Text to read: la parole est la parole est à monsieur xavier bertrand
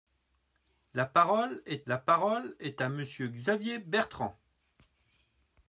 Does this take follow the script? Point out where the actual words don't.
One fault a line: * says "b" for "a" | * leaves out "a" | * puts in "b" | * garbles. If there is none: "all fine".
all fine